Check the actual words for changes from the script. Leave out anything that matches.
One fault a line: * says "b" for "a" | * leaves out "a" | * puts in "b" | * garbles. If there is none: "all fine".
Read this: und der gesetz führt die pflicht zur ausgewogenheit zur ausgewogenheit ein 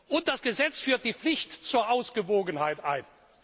* says "das" for "der"
* leaves out "zur ausgewogenheit"